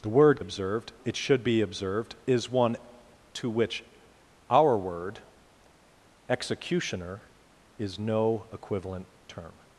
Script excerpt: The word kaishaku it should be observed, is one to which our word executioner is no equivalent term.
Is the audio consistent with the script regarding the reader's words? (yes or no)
no